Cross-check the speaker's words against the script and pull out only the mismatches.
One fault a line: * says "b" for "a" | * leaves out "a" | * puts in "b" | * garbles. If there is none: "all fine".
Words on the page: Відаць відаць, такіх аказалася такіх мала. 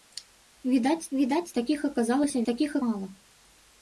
all fine